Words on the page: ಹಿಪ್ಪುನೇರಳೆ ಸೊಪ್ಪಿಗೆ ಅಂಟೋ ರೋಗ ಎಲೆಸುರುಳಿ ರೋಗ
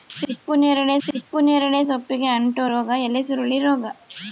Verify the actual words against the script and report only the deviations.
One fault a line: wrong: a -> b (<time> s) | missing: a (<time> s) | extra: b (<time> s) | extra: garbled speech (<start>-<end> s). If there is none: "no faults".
extra: ಹಿಪ್ಪುನೇರಳೆ (1.1 s)